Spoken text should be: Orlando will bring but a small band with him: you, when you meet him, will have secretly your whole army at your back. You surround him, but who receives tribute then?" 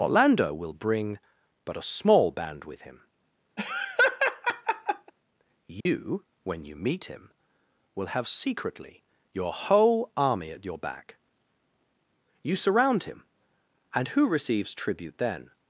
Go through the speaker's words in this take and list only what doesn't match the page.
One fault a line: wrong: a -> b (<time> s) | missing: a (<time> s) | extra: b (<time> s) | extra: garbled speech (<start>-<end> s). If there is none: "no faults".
wrong: but -> and (14.0 s)